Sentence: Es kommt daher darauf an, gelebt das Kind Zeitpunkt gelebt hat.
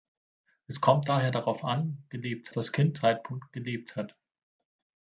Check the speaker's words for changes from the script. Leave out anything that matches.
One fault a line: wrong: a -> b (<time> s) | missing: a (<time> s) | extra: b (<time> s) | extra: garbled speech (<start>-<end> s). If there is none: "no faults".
no faults